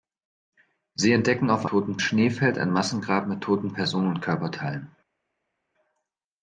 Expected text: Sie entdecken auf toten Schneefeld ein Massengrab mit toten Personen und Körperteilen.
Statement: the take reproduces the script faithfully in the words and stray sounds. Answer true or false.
true